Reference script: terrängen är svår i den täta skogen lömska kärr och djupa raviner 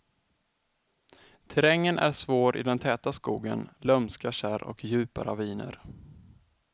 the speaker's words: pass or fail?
pass